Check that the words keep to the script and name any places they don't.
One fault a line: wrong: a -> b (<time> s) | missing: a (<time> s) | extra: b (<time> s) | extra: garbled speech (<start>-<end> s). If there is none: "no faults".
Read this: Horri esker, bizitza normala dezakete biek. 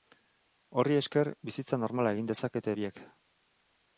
extra: egin (2.2 s)